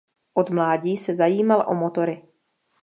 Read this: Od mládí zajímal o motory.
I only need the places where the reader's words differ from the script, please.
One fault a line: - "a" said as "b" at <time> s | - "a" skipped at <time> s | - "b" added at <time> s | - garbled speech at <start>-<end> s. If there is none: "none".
- "se" added at 1.0 s